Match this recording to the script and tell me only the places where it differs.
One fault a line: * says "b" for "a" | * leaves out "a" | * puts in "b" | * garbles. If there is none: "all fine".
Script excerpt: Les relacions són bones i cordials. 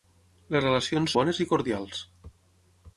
* leaves out "són"